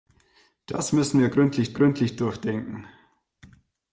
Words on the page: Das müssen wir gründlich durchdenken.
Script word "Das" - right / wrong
right